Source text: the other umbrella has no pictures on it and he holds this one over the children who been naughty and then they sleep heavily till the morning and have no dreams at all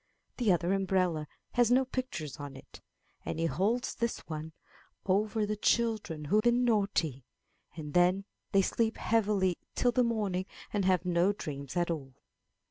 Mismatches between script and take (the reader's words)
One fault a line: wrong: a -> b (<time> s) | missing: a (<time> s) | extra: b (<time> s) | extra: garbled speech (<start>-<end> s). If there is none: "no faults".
no faults